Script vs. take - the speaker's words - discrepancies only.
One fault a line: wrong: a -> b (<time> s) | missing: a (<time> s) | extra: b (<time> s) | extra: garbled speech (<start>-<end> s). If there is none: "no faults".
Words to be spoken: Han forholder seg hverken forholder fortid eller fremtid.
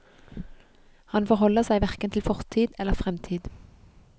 wrong: forholder -> til (2.1 s)